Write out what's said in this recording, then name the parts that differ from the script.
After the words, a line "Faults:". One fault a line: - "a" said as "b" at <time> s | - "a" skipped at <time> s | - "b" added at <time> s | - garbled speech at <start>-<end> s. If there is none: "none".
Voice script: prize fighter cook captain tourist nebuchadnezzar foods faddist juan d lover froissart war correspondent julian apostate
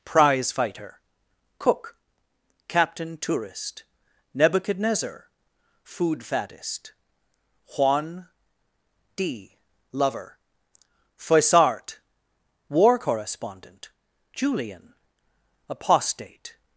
prize fighter cook captain tourist nebuchadnezzar food faddist juan d lover froissart war correspondent julian apostate
Faults:
- "foods" said as "food" at 5.8 s